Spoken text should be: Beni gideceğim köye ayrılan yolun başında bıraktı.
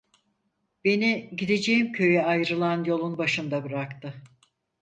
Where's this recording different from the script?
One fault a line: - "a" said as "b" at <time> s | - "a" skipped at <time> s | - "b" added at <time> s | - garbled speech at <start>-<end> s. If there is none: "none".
none